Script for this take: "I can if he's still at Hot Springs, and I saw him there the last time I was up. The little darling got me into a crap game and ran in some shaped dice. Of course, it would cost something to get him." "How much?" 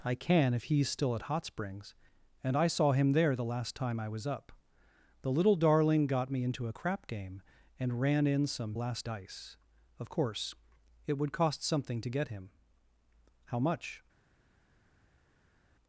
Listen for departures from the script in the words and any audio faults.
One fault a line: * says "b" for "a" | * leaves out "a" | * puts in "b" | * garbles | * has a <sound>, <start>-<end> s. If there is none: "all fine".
* says "last" for "shaped"